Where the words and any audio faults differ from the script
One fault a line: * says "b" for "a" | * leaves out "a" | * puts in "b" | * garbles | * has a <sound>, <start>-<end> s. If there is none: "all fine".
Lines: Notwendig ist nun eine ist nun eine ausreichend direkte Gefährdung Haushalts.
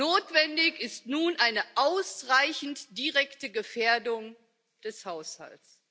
* leaves out "ist nun eine"
* puts in "des"